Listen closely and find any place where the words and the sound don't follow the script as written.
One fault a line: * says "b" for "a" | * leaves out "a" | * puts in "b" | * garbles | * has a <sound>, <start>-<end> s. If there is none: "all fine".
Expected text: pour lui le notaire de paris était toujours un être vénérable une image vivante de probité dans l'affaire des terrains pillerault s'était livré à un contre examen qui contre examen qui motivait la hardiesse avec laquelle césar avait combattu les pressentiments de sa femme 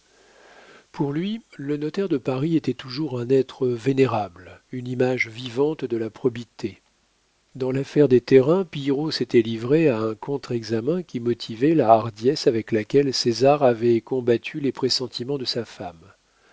* puts in "la"
* leaves out "contre examen qui"